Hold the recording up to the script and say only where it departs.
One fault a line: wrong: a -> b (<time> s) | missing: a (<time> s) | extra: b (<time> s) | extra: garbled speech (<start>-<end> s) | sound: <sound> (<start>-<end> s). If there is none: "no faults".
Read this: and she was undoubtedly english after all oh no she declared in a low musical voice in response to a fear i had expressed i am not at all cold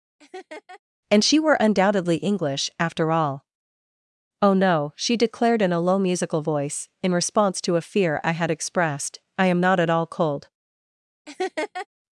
sound: laugh (0.2-0.8 s)
wrong: was -> were (1.4 s)
sound: laugh (11.3-11.9 s)